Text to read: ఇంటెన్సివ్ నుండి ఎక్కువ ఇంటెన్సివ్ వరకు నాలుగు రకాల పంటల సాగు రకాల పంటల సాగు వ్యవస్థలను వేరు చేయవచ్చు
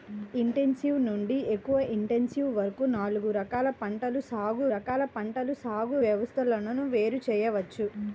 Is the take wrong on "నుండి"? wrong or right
right